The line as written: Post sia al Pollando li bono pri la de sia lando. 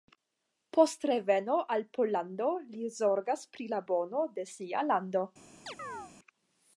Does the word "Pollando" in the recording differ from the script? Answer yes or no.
no